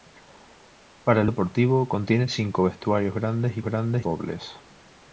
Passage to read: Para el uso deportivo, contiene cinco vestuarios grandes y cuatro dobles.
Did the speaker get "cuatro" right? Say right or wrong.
wrong